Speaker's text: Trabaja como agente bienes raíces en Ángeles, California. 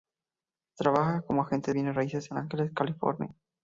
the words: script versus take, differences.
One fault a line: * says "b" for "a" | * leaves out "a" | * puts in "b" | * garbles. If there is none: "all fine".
all fine